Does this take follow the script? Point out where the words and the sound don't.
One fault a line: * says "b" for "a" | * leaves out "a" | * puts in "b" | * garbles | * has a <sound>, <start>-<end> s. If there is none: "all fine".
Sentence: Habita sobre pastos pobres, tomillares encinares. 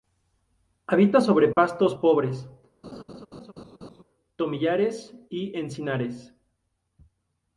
* has a dropout, 1.5-1.6 s
* has a laugh, 2.8-4.0 s
* puts in "y"